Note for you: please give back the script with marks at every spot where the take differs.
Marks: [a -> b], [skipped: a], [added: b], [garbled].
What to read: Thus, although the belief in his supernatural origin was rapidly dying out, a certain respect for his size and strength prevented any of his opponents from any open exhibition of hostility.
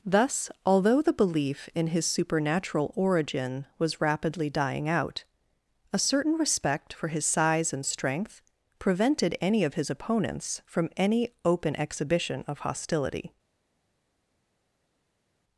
Thus, although the belief in his supernatural origin was rapidly dying out, a certain respect for his size and strength prevented any of his opponents from any open exhibition of hostility.